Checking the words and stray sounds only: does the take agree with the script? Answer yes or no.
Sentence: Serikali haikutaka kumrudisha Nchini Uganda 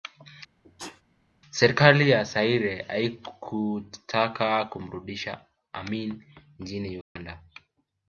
no